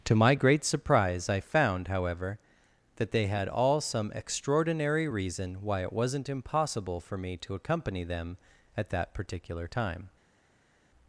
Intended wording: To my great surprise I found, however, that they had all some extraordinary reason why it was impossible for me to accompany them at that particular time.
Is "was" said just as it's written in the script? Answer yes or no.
no